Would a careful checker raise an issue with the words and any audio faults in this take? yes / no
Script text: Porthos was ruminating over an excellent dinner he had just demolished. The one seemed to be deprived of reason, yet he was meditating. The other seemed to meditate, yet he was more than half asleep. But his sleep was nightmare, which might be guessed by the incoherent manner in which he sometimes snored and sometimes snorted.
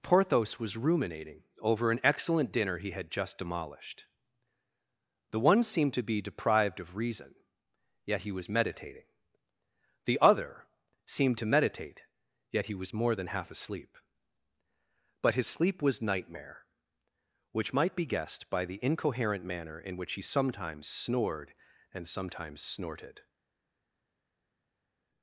no